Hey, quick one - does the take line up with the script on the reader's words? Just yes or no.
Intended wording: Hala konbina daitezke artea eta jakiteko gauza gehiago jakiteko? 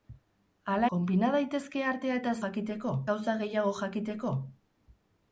yes